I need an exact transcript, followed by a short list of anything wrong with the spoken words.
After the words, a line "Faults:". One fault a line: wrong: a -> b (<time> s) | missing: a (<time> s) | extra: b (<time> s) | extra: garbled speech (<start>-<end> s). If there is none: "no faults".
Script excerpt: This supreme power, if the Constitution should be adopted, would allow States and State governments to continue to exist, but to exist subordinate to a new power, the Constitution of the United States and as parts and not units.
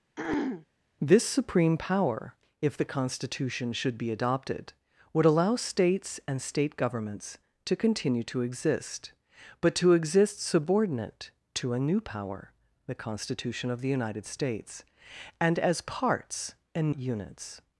This supreme power, if the Constitution should be adopted, would allow States and State governments to continue to exist, but to exist subordinate to a new power, the Constitution of the United States and as parts and units.
Faults:
missing: not (16.9 s)